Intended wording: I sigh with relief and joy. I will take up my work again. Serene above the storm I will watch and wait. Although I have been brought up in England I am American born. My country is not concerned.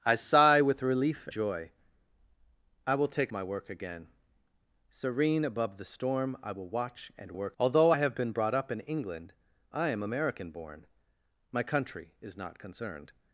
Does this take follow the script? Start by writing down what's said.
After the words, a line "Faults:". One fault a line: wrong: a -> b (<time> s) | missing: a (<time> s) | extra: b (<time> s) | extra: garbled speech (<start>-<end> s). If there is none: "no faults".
I sigh with relief joy. I will take my work again. Serene above the storm I will watch and work. Although I have been brought up in England I am American born. My country is not concerned.
Faults:
missing: and (1.3 s)
missing: up (3.3 s)
wrong: wait -> work (7.3 s)